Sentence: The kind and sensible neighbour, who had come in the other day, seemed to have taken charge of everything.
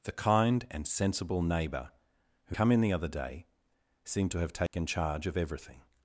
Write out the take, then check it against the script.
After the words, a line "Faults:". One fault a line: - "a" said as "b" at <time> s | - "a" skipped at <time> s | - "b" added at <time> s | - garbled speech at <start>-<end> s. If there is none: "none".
The kind and sensible neighbour, who come in the other day, seemed to have taken charge of everything.
Faults:
- "had" skipped at 2.5 s